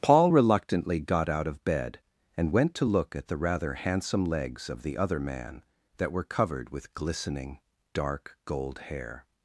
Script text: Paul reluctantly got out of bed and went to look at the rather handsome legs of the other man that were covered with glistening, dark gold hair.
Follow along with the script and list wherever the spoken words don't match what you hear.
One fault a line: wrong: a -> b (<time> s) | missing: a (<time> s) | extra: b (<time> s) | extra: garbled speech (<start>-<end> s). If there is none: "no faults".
no faults